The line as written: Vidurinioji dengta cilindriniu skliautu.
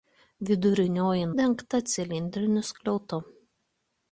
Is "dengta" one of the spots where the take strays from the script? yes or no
no